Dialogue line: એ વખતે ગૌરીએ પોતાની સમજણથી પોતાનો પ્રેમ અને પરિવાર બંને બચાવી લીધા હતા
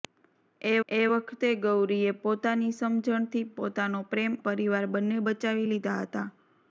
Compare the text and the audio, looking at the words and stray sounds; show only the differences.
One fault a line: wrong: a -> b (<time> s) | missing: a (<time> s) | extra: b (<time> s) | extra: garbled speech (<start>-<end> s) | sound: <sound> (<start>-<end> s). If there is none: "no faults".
extra: એ (0.9 s)
missing: અને (4.3 s)